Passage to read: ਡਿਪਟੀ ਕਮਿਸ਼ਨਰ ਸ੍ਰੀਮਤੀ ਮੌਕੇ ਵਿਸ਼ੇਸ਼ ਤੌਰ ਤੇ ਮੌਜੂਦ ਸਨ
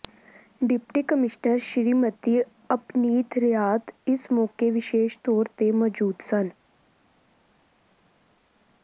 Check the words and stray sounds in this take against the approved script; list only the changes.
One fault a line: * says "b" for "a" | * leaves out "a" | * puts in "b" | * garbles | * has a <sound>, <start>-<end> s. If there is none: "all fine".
* puts in "ਅਪਨੀਤ ਰਿਆਤ ਇਸ"